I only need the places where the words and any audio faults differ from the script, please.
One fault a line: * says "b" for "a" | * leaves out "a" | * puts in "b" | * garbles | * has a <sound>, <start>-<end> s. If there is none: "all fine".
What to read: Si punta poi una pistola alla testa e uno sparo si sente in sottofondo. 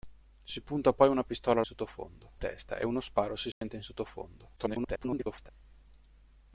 * says "sottofondo" for "alla"
* has a dropout, 3.5-3.6 s
* garbles